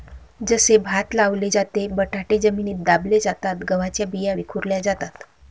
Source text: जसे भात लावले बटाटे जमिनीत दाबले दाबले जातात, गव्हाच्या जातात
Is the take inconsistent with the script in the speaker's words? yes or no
yes